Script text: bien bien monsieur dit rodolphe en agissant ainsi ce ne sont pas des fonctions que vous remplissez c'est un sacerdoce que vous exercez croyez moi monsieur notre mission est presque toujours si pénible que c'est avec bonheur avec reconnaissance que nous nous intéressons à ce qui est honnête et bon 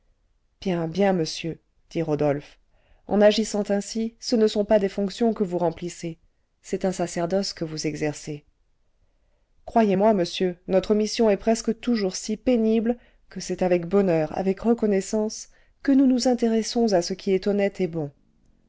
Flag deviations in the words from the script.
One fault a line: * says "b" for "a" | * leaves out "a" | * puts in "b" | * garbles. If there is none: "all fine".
all fine